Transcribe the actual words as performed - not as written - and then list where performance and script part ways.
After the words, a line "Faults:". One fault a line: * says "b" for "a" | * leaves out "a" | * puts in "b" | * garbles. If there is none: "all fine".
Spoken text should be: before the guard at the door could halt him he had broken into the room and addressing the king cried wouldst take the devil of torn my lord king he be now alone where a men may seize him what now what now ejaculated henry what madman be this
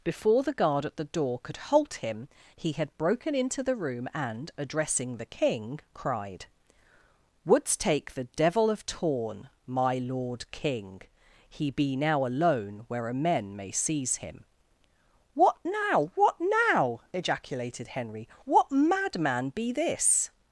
before the guard at the door could halt him he had broken into the room and addressing the king cried wouldst take the devil of torn my lord king he be now alone where a men may seize him what now what now ejaculated henry what madman be this
Faults:
all fine